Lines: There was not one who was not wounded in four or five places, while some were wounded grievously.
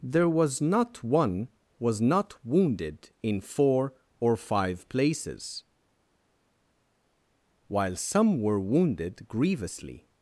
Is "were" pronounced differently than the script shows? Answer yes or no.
no